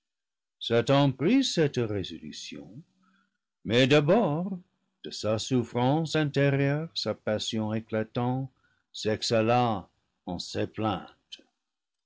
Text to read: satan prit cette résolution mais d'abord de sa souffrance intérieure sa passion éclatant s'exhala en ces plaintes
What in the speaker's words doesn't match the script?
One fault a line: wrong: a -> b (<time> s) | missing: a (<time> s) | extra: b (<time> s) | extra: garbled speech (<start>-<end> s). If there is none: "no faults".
no faults